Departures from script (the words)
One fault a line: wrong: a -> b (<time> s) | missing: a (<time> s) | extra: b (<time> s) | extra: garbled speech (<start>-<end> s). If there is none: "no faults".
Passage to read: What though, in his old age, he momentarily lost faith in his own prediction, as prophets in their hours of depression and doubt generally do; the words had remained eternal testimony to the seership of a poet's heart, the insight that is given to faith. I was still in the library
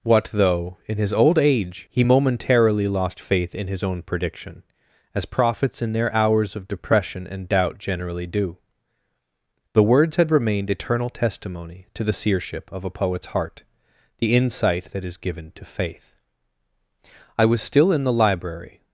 no faults